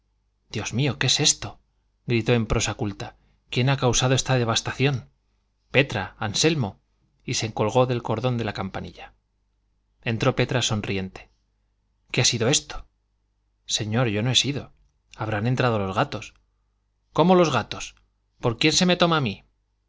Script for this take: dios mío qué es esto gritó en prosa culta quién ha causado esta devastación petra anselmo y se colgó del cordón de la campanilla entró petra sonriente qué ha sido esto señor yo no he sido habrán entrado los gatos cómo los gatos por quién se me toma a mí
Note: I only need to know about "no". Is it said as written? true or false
true